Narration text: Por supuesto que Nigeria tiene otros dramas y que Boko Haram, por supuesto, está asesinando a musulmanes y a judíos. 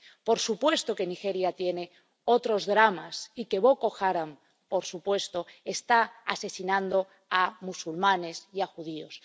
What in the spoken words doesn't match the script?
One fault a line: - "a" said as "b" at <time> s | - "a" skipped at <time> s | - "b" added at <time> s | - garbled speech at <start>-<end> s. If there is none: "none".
none